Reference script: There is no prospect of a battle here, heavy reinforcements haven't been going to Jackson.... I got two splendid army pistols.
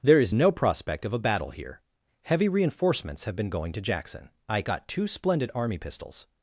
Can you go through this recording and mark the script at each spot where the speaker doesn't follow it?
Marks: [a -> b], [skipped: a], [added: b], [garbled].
There is no prospect of a battle here, heavy reinforcements [haven't -> have] been going to Jackson.... I got two splendid army pistols.